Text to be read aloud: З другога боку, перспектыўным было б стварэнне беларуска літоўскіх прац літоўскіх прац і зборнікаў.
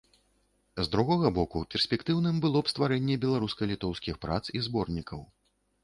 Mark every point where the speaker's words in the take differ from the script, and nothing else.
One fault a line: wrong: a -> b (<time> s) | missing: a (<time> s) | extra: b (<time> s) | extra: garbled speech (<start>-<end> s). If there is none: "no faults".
missing: літоўскіх прац (4.4 s)